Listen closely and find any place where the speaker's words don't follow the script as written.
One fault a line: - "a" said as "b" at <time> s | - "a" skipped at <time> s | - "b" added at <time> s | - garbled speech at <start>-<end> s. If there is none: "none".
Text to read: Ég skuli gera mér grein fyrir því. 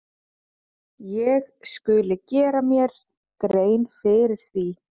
none